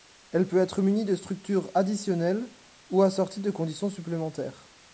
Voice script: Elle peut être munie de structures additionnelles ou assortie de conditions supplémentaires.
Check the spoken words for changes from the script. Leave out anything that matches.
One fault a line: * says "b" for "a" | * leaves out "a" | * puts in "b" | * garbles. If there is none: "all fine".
all fine